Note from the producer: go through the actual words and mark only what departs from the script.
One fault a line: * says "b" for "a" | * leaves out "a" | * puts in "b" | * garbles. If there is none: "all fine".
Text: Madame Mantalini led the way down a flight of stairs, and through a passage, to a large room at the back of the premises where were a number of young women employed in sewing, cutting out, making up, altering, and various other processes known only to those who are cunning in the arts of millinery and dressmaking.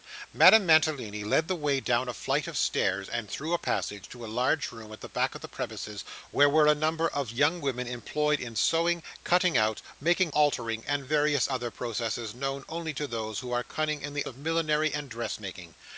* leaves out "up"
* leaves out "arts"